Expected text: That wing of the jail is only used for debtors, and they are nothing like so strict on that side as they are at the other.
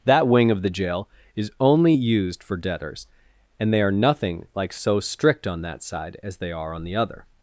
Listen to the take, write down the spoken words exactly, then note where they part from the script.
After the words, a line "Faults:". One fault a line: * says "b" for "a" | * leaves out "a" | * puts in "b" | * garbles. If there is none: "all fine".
That wing of the jail is only used for debtors, and they are nothing like so strict on that side as they are on the other.
Faults:
* says "on" for "at"